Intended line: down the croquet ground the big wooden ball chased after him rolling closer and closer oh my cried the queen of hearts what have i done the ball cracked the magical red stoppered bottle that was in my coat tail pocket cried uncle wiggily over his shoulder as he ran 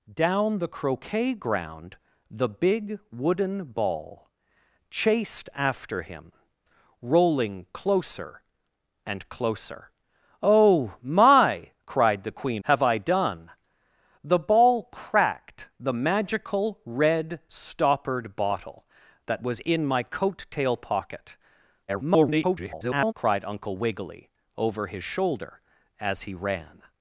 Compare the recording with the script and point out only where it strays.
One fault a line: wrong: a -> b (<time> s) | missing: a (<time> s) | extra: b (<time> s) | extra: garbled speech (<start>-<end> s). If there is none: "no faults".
missing: of hearts what (12.6 s)
extra: garbled speech (21.9-23.1 s)